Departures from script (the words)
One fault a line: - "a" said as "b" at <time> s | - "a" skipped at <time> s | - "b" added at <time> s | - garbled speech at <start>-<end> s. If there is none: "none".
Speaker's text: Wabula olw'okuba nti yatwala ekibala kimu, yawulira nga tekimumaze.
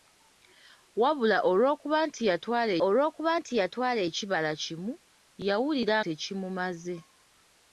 - "olw'okuba nti yatwala" added at 2.9 s
- "nga" skipped at 6.0 s